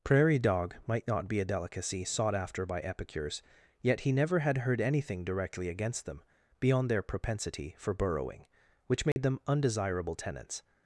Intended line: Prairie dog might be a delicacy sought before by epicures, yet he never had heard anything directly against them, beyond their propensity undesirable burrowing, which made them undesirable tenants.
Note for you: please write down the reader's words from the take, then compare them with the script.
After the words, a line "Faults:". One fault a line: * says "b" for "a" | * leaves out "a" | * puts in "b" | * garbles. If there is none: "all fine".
Prairie dog might not be a delicacy sought after by epicures, yet he never had heard anything directly against them, beyond their propensity for burrowing, which made them undesirable tenants.
Faults:
* puts in "not"
* says "after" for "before"
* says "for" for "undesirable"